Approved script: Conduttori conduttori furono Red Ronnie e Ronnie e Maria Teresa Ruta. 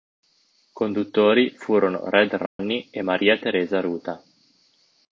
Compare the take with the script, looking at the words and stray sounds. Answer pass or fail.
fail